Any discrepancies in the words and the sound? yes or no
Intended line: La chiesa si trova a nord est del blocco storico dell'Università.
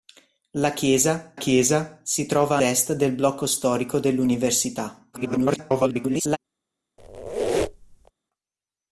yes